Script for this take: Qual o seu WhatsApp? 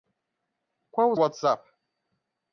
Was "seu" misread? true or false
true